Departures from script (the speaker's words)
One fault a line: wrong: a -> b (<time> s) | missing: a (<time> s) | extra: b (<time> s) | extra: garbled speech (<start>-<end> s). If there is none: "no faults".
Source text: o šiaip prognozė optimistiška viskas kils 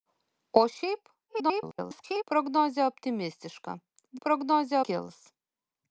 extra: garbled speech (1.3-2.2 s)
wrong: viskas -> prognozė (4.3 s)